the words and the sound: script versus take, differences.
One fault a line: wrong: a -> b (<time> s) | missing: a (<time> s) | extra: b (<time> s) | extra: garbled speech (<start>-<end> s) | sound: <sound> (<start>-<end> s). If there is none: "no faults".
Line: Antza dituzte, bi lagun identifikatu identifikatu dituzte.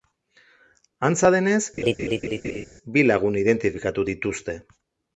wrong: dituzte -> denez (1.4 s)
sound: laugh (1.8-2.7 s)
missing: identifikatu (4.1 s)